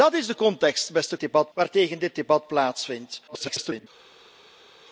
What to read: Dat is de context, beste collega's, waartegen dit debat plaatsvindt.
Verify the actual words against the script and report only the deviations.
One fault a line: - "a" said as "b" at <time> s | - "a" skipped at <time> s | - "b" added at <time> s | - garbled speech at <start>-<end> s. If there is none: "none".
- "collega's" said as "debat" at 1.2 s
- garbled speech at 3.3-3.9 s